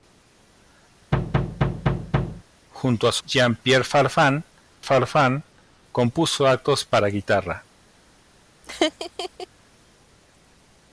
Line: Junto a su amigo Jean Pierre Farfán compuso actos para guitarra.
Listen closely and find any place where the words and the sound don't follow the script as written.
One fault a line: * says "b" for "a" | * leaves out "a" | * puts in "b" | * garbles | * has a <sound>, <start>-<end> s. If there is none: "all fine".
* has a thud, 1.1-2.4 s
* leaves out "amigo"
* puts in "Farfán"
* has a laugh, 8.6-9.5 s